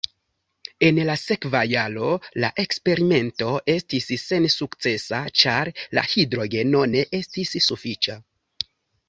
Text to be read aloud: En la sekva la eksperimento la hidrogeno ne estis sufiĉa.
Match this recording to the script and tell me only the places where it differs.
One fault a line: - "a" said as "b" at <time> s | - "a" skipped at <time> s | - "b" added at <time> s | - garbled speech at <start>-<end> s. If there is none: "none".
- "jaro" added at 1.7 s
- "estis sensukcesa ĉar" added at 3.8 s